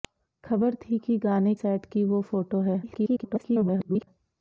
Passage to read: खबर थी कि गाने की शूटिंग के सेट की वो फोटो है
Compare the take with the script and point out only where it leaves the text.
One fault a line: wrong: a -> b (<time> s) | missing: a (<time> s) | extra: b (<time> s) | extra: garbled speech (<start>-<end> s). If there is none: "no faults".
missing: की शूटिंग के (1.5 s)
extra: garbled speech (2.8-4.1 s)